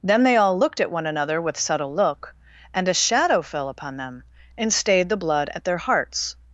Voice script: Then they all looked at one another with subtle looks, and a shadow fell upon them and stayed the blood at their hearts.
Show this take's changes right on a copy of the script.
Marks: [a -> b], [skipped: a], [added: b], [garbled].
Then they all looked at one another with subtle [looks, -> look] and a shadow fell upon them and stayed the blood at their hearts.